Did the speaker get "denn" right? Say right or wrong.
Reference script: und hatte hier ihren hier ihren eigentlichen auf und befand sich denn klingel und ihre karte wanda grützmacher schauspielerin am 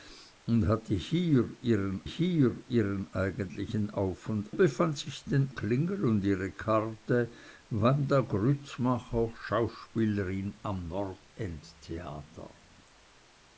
right